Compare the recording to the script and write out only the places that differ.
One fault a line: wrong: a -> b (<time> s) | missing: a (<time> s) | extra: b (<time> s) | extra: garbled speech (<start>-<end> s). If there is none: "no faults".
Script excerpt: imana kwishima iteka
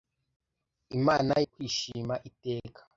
no faults